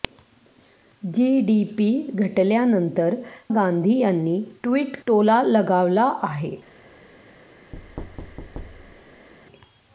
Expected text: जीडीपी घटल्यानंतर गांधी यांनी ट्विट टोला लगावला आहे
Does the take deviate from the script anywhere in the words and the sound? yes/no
yes